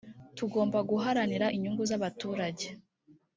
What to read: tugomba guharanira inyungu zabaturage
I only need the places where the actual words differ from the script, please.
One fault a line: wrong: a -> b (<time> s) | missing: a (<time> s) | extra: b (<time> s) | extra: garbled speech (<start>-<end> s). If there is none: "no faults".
no faults